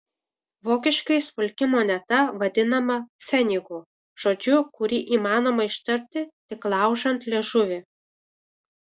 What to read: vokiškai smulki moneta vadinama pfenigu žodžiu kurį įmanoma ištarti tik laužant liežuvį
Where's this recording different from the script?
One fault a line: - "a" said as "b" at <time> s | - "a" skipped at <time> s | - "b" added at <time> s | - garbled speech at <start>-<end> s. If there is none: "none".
none